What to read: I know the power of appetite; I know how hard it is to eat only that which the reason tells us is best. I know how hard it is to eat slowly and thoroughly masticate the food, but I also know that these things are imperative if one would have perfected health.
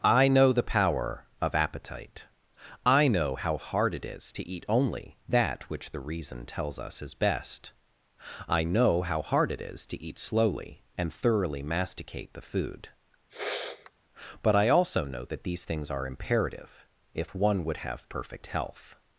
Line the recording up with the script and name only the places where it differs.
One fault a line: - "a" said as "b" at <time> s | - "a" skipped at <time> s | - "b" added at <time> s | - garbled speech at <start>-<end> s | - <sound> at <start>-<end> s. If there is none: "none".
- sniff at 13.3-13.9 s
- "perfected" said as "perfect" at 18.1 s